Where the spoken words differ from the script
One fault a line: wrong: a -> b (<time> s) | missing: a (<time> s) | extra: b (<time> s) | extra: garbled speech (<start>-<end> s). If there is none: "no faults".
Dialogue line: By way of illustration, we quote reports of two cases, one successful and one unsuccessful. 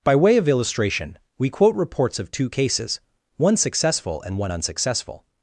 no faults